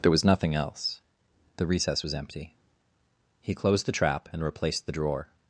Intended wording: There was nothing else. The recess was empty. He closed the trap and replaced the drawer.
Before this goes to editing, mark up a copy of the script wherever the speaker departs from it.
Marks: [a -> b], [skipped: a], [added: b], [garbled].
There was nothing else. The recess was empty. He closed the trap and replaced the drawer.